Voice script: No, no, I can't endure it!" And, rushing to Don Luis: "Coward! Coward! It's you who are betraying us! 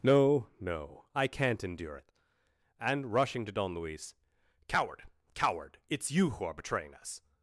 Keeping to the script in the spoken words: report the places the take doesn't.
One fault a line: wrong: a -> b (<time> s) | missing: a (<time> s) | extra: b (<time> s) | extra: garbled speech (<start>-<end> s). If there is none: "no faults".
no faults